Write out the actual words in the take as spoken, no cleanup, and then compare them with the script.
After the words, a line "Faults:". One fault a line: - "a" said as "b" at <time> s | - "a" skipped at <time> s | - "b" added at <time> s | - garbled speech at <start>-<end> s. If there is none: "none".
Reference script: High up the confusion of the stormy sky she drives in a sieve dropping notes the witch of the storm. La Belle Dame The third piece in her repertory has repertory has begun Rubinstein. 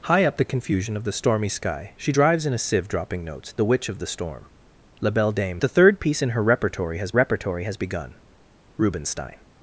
High up the confusion of the stormy sky she drives in a sieve dropping notes the witch of the storm. La Belle Dame The third piece in her repertory has repertory has begun Rubinstein.
Faults:
none